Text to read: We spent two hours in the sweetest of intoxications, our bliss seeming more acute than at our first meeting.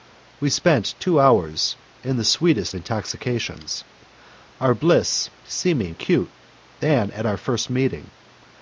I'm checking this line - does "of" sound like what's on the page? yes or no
no